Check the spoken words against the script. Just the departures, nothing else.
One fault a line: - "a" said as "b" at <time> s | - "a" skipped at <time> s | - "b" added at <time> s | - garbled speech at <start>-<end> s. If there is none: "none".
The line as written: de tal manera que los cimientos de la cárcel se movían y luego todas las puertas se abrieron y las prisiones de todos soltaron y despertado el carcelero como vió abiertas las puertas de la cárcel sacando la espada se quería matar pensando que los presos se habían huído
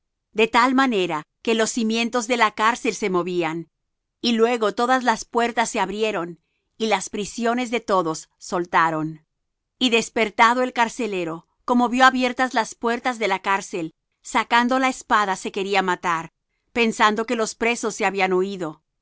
none